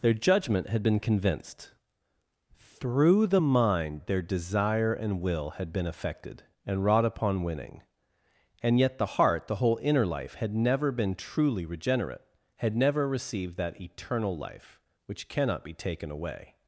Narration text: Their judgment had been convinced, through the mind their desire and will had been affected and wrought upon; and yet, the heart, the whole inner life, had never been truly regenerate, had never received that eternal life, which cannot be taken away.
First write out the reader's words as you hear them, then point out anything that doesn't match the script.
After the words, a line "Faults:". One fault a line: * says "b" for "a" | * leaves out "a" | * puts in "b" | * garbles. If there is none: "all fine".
Their judgment had been convinced, through the mind their desire and will had been affected and wrought upon; winning and yet, the heart, the whole inner life, had never been truly regenerate, had never received that eternal life, which cannot be taken away.
Faults:
* puts in "winning"